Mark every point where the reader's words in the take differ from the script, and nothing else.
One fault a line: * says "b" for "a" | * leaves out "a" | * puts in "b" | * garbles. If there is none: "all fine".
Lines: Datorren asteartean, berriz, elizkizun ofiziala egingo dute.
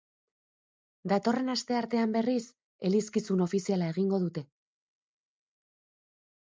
all fine